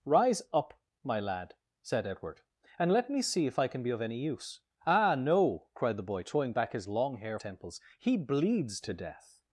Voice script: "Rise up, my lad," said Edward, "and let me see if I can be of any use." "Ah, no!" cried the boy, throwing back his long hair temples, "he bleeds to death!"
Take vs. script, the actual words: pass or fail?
pass